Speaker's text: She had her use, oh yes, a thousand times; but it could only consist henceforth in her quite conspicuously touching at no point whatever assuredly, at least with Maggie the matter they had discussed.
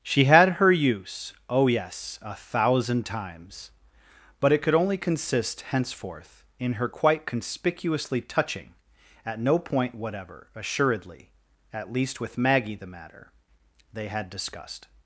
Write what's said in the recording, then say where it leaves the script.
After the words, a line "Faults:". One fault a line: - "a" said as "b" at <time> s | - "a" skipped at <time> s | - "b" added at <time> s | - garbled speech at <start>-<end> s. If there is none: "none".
She had her use, oh yes, a thousand times; but it could only consist henceforth in her quite conspicuously touching at no point whatever assuredly, at least with Maggie the matter they had discussed.
Faults:
none